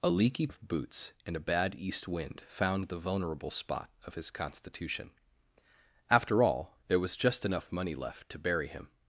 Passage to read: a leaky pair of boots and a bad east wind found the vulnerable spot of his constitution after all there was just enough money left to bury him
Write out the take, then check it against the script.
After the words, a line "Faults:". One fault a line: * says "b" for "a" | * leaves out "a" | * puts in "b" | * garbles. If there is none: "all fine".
a leaky of boots and a bad east wind found the vulnerable spot of his constitution after all there was just enough money left to bury him
Faults:
* leaves out "pair"